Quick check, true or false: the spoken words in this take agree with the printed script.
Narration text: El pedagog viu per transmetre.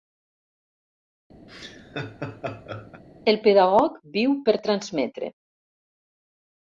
true